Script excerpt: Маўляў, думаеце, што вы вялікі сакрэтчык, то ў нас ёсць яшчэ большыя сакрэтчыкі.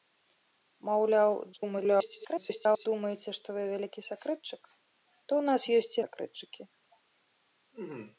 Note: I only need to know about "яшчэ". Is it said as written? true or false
false